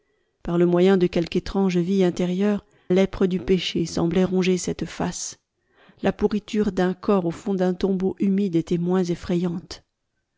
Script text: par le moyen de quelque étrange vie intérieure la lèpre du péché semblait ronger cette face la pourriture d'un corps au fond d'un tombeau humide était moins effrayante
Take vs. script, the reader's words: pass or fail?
fail